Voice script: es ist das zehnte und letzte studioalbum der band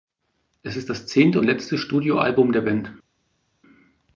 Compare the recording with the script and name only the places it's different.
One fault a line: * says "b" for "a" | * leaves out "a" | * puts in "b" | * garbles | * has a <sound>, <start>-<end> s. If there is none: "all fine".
all fine